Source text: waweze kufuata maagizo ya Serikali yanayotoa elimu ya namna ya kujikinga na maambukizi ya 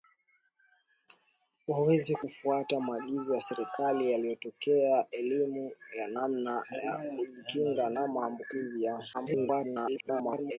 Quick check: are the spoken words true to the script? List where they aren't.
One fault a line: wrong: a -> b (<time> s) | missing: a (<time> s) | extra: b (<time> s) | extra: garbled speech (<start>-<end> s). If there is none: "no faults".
extra: garbled speech (9.1-10.6 s)